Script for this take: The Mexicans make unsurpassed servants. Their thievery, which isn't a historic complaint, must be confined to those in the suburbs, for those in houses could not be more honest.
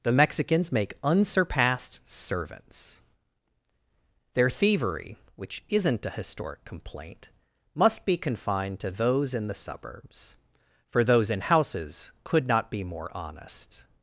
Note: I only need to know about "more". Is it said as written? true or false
true